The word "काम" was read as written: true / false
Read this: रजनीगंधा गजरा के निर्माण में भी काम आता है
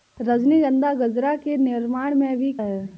false